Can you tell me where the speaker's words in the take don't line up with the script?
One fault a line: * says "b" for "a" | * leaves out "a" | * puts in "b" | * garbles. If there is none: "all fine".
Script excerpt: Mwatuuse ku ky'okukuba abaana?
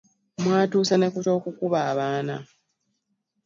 * puts in "ne"